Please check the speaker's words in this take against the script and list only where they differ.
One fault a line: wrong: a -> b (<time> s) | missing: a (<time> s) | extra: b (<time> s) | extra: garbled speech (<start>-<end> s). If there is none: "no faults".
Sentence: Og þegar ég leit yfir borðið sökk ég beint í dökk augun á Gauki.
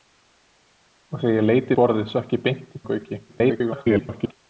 missing: yfir (1.8 s)
missing: dökk augun (2.8 s)
extra: garbled speech (3.3-4.3 s)